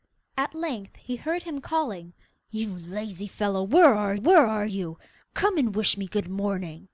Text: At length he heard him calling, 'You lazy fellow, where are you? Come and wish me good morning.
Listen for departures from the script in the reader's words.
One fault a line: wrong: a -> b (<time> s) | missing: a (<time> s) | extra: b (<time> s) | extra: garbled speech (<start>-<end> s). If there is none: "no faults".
extra: where are (4.1 s)